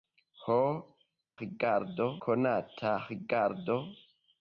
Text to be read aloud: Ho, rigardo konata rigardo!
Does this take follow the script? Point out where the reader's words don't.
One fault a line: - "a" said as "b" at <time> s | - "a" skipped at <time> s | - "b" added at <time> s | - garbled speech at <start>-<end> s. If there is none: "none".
none